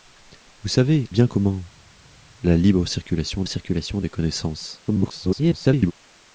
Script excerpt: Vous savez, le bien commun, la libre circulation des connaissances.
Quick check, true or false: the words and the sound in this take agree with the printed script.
false